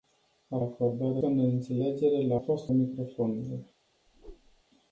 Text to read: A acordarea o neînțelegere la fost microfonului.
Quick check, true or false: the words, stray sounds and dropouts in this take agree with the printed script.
false